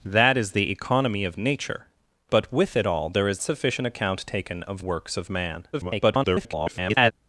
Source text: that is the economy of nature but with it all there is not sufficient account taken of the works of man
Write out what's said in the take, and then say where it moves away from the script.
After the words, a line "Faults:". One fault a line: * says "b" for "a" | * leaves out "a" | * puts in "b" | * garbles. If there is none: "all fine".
that is the economy of nature but with it all there is sufficient account taken of works of man [garbled]
Faults:
* leaves out "not"
* leaves out "the"
* garbles